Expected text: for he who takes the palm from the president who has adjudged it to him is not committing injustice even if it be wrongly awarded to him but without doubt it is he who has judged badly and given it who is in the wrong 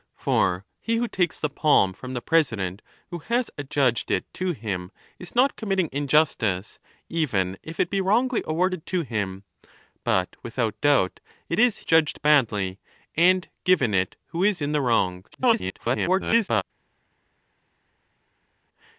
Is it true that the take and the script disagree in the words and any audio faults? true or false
true